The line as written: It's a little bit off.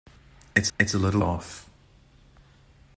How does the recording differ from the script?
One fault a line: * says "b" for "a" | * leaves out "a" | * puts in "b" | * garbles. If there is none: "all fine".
* puts in "it's"
* leaves out "bit"